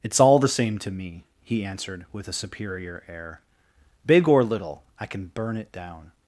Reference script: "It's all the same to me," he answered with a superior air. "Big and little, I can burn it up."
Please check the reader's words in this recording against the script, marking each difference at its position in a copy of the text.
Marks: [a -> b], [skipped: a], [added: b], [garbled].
"It's all the same to me," he answered with a superior air. "Big [and -> or] little, I can burn it [up." -> down]